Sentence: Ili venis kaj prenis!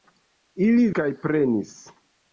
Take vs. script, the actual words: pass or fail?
fail